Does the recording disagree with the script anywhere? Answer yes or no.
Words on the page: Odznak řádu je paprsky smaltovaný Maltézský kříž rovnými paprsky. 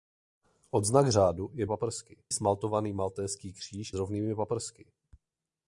no